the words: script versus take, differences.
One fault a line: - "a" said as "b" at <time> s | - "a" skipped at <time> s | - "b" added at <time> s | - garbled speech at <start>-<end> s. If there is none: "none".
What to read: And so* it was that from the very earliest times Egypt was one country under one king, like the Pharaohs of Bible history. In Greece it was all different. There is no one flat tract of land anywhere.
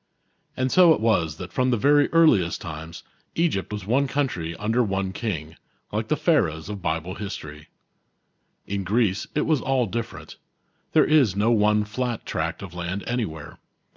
none